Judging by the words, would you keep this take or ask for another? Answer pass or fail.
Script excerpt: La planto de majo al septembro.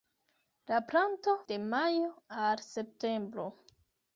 pass